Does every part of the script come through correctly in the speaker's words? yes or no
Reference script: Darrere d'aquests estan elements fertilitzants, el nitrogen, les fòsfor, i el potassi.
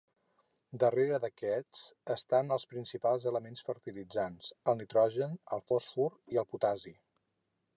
no